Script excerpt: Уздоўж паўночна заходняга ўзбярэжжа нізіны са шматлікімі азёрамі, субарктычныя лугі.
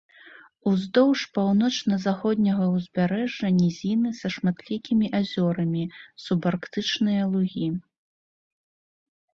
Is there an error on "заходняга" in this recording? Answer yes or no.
no